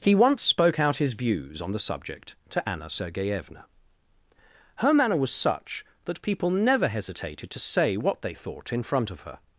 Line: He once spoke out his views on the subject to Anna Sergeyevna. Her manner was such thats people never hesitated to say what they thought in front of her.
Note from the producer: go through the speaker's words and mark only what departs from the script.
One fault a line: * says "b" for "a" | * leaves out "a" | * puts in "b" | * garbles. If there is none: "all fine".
* says "that" for "thats"